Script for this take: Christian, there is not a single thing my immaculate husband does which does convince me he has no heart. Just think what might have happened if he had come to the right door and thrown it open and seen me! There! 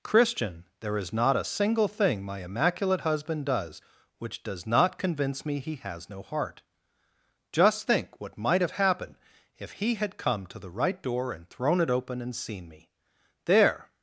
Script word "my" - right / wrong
right